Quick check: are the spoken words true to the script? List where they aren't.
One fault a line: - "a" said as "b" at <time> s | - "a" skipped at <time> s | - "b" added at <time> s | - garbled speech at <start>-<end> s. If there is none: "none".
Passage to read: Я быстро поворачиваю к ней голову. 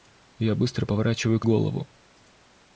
- "ней" skipped at 1.5 s